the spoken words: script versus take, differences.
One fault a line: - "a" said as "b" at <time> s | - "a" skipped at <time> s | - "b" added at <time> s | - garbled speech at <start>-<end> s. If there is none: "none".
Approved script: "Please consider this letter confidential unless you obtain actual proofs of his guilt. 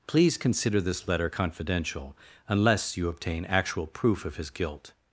- "proofs" said as "proof" at 3.9 s